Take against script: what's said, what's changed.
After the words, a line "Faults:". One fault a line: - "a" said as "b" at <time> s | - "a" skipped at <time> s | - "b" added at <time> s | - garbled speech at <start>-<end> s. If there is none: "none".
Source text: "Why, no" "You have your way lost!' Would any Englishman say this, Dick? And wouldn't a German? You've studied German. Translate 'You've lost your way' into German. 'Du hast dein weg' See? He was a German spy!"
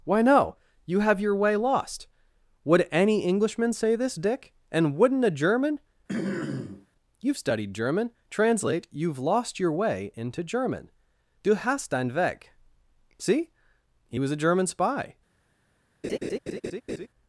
"Why, no" "You have your way lost!' Would any Englishman say this, Dick? And wouldn't a German? You've studied German. Translate 'You've lost your way' into German. 'Du hast dein weg' See? He was a German spy!"
Faults:
none